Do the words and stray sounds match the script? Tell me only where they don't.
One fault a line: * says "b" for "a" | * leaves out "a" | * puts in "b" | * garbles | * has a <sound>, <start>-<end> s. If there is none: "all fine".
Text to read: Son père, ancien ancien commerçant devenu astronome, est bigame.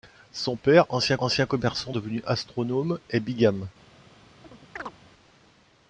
* has a chirp, 4.4-4.9 s